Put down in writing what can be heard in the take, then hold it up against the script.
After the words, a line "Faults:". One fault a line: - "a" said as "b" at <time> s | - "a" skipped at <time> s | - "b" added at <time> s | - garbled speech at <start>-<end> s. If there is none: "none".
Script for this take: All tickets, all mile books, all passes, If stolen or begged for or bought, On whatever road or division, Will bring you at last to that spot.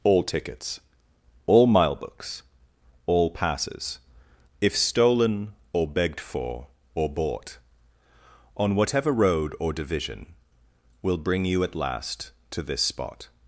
All tickets, all mile books, all passes, If stolen or begged for or bought, On whatever road or division, Will bring you at last to this spot.
Faults:
- "that" said as "this" at 12.6 s